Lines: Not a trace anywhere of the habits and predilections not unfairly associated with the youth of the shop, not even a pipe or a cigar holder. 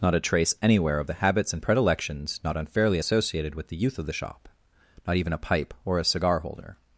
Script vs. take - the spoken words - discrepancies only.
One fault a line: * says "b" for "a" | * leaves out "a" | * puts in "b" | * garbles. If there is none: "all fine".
all fine